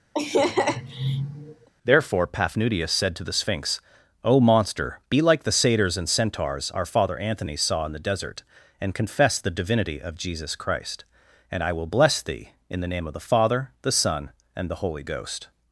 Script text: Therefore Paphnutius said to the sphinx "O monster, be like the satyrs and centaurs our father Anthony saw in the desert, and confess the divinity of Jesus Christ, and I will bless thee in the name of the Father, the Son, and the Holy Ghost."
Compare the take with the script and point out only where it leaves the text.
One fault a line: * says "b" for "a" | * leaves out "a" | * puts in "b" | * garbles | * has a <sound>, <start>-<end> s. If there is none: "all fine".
* has a laugh, 0.1-1.7 s